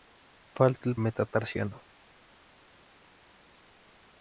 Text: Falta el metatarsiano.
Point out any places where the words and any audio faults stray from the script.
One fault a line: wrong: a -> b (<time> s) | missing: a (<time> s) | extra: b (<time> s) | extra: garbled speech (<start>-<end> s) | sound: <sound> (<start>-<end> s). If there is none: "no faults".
no faults